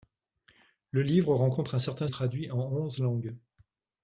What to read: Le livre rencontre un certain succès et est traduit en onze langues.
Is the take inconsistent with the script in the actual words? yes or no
yes